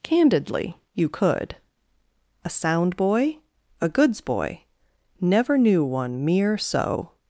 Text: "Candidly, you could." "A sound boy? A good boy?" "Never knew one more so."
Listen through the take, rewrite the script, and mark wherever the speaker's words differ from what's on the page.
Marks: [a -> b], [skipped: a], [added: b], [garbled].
"Candidly, you could." "A sound boy? A [good -> goods] boy?" "Never knew one [more -> mere] so."